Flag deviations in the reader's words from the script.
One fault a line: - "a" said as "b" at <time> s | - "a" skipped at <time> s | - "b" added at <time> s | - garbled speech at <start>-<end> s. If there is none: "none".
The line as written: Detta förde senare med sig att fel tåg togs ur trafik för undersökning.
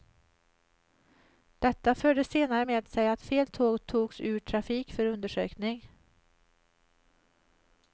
none